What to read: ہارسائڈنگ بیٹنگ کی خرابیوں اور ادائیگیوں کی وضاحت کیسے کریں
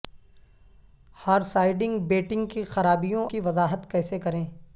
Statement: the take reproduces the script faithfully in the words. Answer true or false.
false